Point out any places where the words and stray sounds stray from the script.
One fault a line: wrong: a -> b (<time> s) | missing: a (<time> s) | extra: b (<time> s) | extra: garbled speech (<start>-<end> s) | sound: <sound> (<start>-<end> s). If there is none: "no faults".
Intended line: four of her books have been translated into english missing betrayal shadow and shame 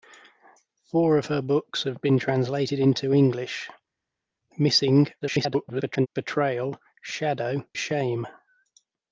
extra: garbled speech (5.2-6.1 s)
missing: and (7.7 s)